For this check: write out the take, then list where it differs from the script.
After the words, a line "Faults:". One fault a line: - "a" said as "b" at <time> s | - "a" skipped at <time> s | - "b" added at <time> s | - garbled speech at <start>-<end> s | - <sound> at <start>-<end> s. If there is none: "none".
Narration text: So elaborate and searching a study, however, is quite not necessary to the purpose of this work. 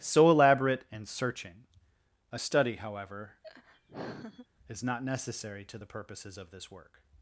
So elaborate and searching a study, however, is not necessary to the purposes of this work.
Faults:
- laugh at 3.4-4.5 s
- "quite" skipped at 4.8 s
- "purpose" said as "purposes" at 5.8 s